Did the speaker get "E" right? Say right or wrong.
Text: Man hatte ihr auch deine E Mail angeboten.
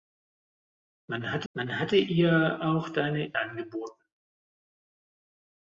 wrong